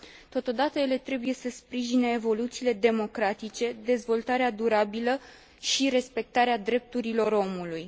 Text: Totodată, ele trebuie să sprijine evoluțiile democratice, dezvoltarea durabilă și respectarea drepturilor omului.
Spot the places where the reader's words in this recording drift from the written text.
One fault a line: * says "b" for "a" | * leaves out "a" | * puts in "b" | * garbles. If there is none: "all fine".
all fine